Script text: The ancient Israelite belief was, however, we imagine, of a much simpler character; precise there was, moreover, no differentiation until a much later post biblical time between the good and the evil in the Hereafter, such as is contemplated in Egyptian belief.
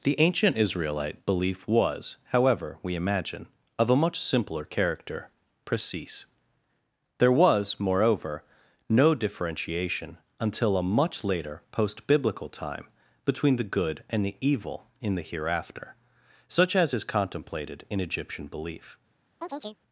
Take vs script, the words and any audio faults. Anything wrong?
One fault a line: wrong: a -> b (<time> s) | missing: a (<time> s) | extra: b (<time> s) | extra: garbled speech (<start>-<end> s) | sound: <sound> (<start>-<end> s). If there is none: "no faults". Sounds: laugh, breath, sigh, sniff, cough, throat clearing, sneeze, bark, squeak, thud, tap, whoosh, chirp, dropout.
sound: chirp (19.4-19.8 s)